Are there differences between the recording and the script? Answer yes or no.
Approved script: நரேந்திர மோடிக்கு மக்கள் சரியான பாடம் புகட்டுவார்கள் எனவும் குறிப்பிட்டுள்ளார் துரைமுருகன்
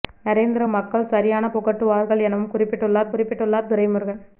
yes